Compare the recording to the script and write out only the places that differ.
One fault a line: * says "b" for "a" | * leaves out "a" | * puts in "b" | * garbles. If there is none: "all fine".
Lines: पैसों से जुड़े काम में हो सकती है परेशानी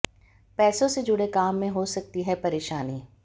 all fine